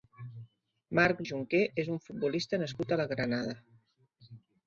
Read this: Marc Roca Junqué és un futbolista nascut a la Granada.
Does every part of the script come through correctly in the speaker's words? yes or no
no